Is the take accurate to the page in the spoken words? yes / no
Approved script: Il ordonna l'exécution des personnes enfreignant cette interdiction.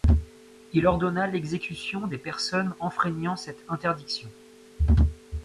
yes